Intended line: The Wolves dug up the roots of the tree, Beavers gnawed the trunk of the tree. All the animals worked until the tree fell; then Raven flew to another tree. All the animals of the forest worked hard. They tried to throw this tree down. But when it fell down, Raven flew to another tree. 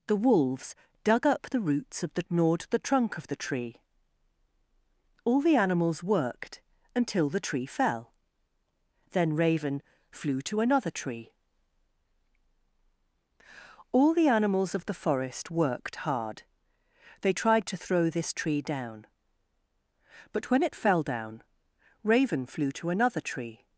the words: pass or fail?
fail